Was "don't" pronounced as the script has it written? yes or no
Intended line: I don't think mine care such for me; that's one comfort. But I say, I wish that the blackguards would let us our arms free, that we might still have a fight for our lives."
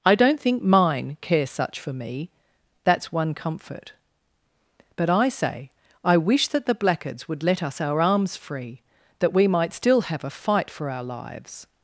yes